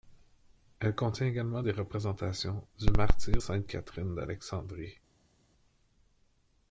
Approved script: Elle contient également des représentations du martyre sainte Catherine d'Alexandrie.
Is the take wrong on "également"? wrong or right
right